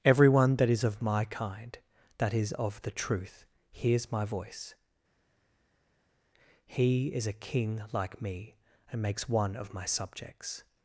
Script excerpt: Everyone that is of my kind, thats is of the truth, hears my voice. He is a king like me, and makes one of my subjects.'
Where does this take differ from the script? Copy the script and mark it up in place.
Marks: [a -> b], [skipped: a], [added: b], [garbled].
Everyone that is of my kind, [thats -> that] is of the truth, hears my voice. He is a king like me, and makes one of my subjects.'